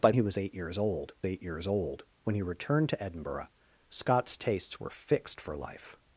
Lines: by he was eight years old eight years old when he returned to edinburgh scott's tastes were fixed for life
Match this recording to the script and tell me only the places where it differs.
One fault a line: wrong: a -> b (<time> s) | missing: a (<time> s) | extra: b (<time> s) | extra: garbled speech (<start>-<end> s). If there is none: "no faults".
no faults